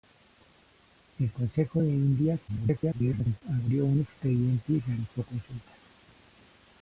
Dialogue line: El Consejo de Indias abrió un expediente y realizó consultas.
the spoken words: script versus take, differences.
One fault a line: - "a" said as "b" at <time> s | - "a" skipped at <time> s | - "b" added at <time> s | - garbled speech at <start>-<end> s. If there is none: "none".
- garbled speech at 2.5-3.4 s